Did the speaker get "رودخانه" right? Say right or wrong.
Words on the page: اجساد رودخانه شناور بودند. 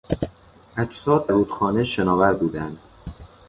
right